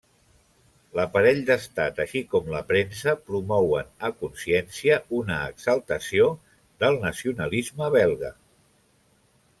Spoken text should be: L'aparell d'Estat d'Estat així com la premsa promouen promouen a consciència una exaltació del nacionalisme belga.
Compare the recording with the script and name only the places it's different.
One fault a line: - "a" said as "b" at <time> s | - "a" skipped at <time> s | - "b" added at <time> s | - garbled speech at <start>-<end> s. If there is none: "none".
- "d'Estat" skipped at 2.0 s
- "promouen" skipped at 3.9 s